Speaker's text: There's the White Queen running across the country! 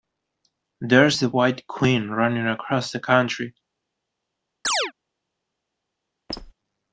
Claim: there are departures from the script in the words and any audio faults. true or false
true